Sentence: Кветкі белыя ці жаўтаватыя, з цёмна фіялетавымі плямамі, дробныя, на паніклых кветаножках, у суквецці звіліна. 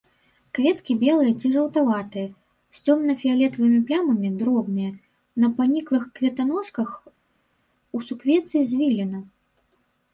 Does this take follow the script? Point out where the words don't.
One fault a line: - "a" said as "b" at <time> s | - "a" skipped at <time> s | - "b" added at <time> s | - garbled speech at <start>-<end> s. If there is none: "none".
none